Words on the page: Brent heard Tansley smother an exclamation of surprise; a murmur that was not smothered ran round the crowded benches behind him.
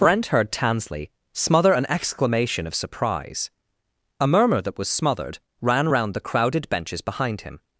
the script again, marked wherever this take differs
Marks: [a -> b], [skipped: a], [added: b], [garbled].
Brent heard Tansley smother an exclamation of surprise; a murmur that was [skipped: not] smothered ran round the crowded benches behind him.